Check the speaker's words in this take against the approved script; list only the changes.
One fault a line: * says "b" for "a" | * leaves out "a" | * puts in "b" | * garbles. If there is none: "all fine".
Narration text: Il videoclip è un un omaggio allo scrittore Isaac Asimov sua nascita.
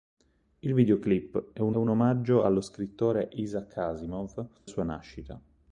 all fine